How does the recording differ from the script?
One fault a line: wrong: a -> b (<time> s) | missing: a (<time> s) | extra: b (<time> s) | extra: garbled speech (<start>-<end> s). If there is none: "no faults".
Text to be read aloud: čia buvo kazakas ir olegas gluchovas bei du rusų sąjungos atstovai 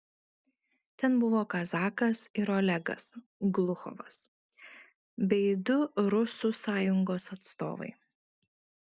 wrong: čia -> ten (1.0 s)